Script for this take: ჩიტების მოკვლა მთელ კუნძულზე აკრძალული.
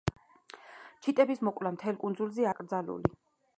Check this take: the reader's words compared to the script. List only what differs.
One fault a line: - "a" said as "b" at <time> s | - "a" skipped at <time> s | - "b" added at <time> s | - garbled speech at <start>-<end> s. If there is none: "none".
none